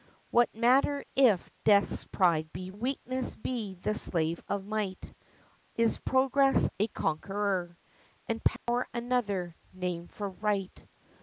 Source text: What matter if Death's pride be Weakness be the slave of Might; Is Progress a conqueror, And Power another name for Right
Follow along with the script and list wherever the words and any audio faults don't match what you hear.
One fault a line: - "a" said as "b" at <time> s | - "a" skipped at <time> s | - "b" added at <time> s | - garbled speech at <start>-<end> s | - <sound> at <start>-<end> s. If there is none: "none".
- dropout at 8.6-8.7 s